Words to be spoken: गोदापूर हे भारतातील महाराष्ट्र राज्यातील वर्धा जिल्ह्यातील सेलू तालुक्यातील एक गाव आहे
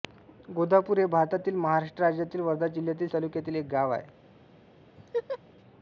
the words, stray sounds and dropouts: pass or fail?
fail